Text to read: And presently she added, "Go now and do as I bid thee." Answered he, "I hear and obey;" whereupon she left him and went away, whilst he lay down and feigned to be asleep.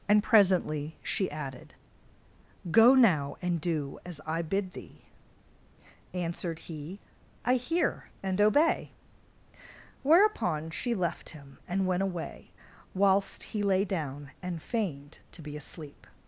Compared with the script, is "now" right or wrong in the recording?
right